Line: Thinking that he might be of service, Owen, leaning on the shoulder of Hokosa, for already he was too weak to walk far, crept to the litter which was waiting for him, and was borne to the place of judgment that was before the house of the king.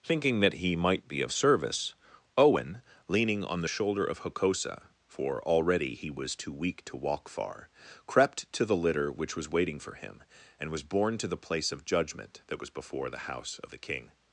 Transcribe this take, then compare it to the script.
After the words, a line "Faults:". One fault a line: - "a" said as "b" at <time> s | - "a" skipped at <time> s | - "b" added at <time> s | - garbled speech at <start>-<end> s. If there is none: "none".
Thinking that he might be of service, Owen, leaning on the shoulder of Hokosa, for already he was too weak to walk far, crept to the litter which was waiting for him, and was borne to the place of judgment that was before the house of the king.
Faults:
none